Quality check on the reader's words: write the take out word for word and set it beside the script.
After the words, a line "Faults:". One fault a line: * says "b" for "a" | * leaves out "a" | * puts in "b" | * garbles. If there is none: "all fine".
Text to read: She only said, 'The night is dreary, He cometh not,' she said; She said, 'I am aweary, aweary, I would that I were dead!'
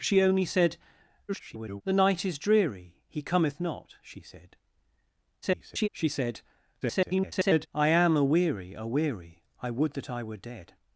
She only said, [garbled] 'The night is dreary, He cometh not,' she said; [garbled] She said, [garbled] 'I am aweary, aweary, I would that I were dead!'
Faults:
* garbles
* garbles
* garbles